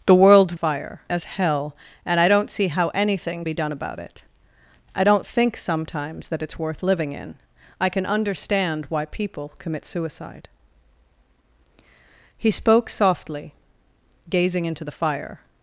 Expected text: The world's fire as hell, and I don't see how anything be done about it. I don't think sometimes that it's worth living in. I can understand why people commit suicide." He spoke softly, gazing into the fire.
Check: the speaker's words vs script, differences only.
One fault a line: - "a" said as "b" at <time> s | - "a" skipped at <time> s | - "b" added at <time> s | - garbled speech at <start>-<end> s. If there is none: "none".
none